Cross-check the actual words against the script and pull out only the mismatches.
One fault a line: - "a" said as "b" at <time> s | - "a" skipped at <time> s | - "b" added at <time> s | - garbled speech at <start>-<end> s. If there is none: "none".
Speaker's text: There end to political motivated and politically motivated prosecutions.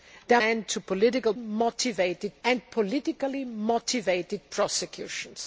none